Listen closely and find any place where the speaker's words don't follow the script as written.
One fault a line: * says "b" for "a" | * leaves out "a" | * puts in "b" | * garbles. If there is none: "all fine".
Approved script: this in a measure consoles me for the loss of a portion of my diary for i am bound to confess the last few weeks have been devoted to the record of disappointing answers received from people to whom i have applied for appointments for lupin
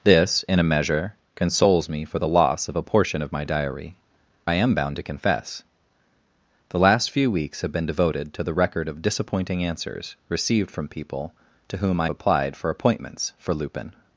* leaves out "for"
* leaves out "have"